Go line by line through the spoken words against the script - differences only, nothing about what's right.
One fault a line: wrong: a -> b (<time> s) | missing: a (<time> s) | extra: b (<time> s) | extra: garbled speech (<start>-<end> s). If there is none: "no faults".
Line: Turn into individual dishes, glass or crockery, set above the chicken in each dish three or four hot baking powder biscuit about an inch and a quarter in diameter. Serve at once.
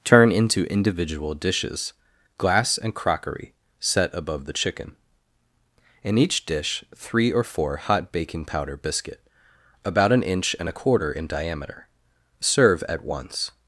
wrong: or -> and (2.8 s)